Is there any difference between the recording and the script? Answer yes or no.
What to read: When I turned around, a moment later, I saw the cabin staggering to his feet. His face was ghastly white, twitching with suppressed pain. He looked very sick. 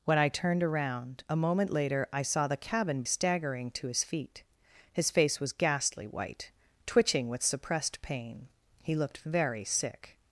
no